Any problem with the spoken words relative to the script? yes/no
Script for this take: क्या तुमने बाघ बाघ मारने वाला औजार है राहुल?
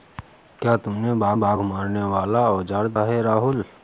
no